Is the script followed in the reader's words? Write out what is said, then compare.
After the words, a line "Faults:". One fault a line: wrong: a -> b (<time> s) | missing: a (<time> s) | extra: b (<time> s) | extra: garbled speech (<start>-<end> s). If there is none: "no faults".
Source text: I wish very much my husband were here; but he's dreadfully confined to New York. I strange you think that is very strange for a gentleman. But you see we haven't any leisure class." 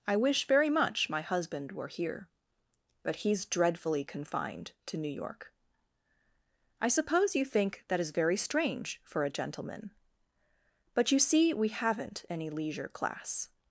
I wish very much my husband were here; but he's dreadfully confined to New York. I suppose you think that is very strange for a gentleman. But you see we haven't any leisure class."
Faults:
wrong: strange -> suppose (6.9 s)